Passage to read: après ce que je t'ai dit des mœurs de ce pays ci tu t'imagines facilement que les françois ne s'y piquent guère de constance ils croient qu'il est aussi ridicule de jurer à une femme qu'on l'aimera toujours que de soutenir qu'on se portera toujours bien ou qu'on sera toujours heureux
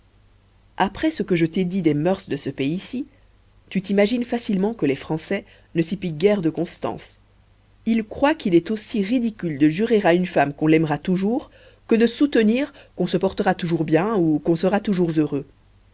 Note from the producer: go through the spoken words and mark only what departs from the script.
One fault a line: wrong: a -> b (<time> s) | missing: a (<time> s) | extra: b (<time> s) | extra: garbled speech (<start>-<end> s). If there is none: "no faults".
no faults